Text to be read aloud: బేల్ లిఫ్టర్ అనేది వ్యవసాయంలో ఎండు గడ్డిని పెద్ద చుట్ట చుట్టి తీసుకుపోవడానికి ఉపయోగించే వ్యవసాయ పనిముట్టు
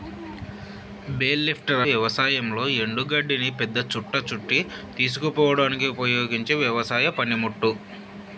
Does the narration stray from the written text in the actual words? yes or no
yes